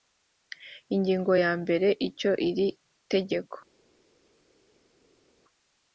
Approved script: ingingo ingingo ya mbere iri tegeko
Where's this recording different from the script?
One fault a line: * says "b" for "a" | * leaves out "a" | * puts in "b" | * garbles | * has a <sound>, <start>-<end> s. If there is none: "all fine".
* leaves out "ingingo"
* puts in "icyo"